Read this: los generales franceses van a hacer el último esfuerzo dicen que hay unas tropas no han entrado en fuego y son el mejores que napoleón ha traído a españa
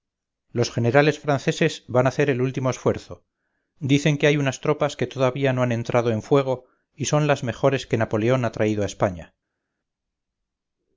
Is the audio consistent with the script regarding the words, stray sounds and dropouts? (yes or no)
no